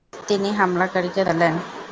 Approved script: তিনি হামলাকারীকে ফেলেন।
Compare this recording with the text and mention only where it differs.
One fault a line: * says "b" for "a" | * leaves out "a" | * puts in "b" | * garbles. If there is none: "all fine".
all fine